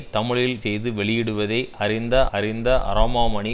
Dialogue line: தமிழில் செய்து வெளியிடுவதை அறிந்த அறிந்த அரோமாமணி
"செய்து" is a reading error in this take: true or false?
false